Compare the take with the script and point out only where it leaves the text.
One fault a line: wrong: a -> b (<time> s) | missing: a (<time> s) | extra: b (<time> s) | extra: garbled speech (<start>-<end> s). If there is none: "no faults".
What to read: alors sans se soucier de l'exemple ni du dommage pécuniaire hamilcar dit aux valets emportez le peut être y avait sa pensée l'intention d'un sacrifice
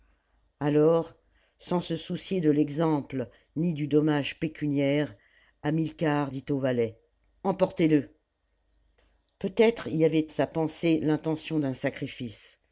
no faults